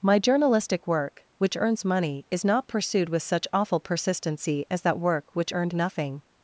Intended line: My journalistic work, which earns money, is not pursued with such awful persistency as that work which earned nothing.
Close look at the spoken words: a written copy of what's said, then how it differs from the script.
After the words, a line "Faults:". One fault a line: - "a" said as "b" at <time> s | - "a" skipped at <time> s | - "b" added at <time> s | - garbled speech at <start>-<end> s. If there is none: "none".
My journalistic work, which earns money, is not pursued with such awful persistency as that work which earned nothing.
Faults:
none